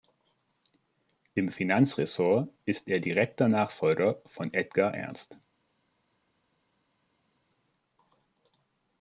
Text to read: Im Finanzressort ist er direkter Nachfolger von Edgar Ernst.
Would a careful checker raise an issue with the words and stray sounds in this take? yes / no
no